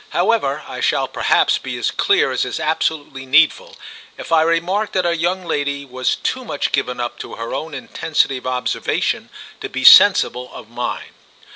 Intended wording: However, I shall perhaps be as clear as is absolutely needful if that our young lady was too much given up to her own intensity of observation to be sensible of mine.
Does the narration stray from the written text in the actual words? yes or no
yes